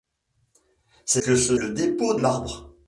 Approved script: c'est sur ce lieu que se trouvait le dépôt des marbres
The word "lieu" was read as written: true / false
false